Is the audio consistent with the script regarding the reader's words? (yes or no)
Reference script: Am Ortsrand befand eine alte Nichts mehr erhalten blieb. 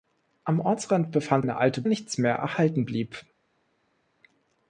yes